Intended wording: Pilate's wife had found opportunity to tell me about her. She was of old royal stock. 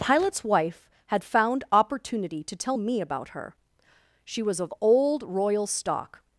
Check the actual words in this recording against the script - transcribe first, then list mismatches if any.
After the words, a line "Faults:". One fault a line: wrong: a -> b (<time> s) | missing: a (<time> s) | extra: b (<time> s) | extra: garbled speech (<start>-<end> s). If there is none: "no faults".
Pilate's wife had found opportunity to tell me about her. She was of old royal stock.
Faults:
no faults